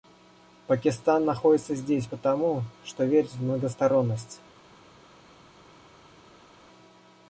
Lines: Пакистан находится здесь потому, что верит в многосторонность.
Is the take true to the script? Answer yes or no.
yes